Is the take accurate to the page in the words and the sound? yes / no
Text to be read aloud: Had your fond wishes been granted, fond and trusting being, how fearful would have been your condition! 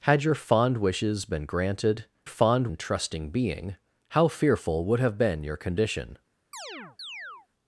no